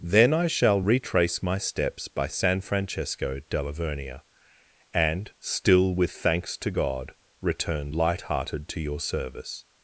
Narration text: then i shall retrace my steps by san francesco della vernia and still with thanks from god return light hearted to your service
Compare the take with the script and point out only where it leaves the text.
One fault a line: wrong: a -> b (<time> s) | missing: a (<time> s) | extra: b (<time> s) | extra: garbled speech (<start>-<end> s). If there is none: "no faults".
wrong: from -> to (6.6 s)